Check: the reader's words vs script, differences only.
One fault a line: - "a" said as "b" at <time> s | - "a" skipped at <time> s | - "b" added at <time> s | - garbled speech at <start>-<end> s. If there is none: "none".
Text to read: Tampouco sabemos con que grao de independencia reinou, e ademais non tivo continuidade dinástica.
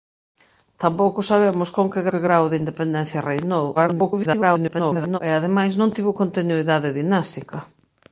- "que" added at 2.1 s
- garbled speech at 3.8-5.2 s